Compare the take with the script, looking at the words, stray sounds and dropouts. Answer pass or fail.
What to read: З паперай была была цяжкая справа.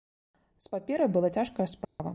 fail